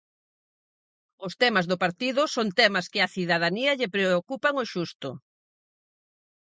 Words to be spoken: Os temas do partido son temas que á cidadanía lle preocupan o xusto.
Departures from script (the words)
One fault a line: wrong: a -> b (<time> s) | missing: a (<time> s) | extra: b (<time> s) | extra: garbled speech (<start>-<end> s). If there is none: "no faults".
no faults